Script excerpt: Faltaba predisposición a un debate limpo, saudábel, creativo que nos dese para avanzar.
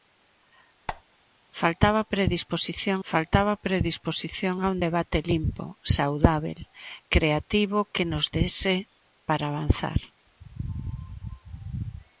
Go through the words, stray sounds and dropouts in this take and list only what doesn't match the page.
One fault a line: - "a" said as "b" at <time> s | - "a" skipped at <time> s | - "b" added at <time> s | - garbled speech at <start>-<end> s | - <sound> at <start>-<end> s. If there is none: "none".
- squeak at 0.9-1.0 s
- "faltaba predisposición" added at 3.1 s